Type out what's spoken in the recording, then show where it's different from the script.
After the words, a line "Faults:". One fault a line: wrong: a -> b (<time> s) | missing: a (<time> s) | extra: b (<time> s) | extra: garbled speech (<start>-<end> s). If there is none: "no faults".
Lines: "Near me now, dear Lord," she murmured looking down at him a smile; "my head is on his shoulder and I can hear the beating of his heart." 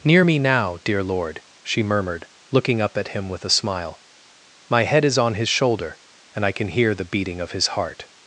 "Near me now, dear Lord," she murmured looking up at him with a smile; "my head is on his shoulder and I can hear the beating of his heart."
Faults:
wrong: down -> up (2.8 s)
extra: with (3.3 s)